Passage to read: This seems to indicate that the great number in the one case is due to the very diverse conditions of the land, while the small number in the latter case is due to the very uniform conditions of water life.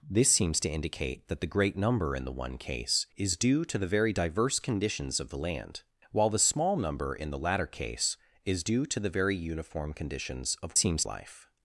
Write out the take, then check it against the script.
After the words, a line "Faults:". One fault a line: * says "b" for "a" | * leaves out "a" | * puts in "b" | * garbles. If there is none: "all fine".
This seems to indicate that the great number in the one case is due to the very diverse conditions of the land, while the small number in the latter case is due to the very uniform conditions of seems life.
Faults:
* says "seems" for "water"